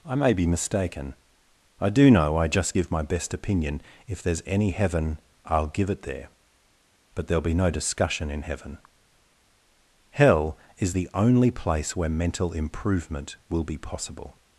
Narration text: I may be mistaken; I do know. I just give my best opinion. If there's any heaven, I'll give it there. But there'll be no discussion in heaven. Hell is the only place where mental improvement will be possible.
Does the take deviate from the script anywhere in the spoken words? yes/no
no